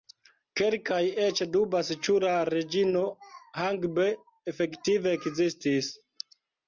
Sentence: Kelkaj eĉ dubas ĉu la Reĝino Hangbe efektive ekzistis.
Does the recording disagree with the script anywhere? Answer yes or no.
no